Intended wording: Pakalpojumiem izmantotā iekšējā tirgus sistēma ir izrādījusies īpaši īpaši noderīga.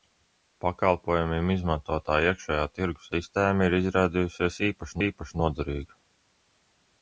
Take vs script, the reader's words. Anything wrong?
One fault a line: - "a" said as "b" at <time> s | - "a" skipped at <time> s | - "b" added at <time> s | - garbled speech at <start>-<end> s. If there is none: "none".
none